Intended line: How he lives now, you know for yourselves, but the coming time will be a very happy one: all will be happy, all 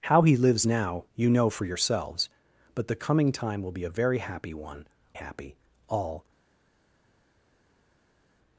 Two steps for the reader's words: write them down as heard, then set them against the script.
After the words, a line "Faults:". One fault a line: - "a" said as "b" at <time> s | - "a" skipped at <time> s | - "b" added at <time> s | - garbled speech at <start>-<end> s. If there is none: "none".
How he lives now, you know for yourselves, but the coming time will be a very happy one: happy, all
Faults:
- "all will be" skipped at 4.9 s